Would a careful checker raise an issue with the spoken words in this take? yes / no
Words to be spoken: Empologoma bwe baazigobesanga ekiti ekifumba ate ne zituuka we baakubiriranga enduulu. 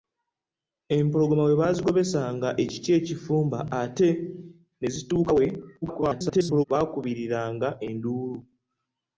yes